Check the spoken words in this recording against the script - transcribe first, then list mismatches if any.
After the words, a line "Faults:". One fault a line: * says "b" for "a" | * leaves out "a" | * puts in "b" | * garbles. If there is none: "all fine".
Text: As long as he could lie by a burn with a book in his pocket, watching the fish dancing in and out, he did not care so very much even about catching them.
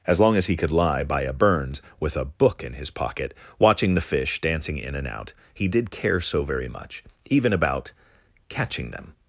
As long as he could lie by a burns with a book in his pocket, watching the fish dancing in and out, he did care so very much even about catching them.
Faults:
* says "burns" for "burn"
* leaves out "not"